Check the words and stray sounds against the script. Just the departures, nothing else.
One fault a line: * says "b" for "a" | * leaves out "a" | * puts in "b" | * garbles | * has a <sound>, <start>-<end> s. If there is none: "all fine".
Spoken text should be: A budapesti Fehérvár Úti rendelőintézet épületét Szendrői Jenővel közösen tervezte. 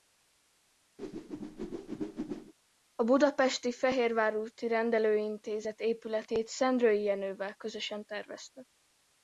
* has a whoosh, 1.0-2.5 s